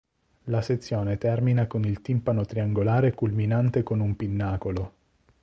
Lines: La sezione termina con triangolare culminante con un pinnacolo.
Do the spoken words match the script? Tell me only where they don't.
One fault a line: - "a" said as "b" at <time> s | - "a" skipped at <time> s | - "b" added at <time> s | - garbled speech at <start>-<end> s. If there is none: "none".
- "il timpano" added at 1.9 s